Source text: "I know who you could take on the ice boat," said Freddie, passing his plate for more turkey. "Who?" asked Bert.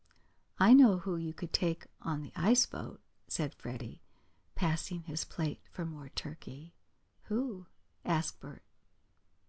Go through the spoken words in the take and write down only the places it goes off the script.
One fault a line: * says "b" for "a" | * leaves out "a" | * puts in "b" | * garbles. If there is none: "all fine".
all fine